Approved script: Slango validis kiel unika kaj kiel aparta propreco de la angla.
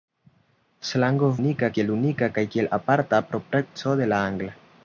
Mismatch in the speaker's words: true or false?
true